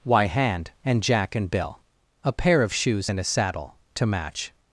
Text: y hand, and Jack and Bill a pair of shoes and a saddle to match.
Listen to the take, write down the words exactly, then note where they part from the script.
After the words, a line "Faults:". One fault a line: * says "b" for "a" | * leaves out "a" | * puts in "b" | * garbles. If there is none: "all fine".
y hand, and Jack and Bill a pair of shoes and a saddle to match.
Faults:
all fine